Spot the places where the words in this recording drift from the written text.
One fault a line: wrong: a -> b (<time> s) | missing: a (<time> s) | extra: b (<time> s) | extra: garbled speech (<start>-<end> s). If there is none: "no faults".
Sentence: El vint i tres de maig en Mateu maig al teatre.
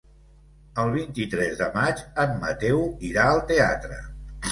wrong: maig -> irà (3.1 s)